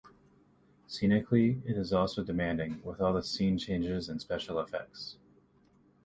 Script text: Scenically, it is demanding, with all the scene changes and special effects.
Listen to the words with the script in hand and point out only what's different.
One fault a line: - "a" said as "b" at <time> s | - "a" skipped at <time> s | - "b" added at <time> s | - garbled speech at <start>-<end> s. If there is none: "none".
- "also" added at 1.9 s